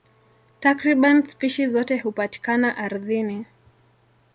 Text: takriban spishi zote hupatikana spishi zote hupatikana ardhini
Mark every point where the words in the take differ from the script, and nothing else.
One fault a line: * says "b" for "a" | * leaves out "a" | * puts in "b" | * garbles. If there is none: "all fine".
* leaves out "spishi zote hupatikana"